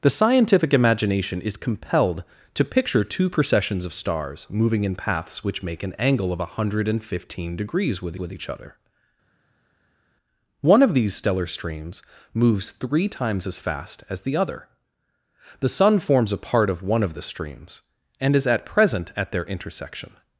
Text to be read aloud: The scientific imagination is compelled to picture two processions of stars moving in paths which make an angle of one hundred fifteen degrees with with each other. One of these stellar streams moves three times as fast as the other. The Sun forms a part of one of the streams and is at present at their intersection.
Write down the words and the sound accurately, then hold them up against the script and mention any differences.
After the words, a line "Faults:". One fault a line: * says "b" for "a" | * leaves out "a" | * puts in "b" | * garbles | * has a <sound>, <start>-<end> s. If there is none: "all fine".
The scientific imagination is compelled to picture two processions of stars moving in paths which make an angle of one hundred fifteen degrees with with each other. One of these stellar streams moves three times as fast as the other. The Sun forms a part of one of the streams and is at present at their intersection.
Faults:
all fine